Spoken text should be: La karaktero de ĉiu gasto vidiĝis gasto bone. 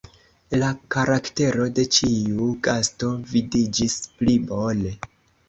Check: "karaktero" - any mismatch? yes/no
no